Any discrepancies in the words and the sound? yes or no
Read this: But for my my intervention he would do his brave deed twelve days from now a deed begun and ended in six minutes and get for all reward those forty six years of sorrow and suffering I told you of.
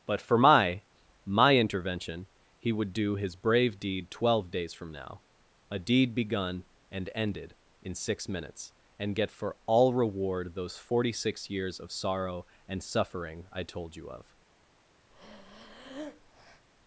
yes